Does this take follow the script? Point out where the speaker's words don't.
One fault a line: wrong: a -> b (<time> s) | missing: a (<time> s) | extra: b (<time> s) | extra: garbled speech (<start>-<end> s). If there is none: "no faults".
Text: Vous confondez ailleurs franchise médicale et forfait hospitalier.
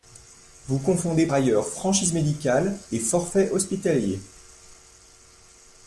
no faults